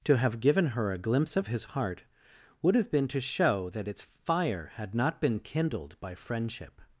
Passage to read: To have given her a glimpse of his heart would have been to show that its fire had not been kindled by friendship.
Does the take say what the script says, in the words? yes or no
yes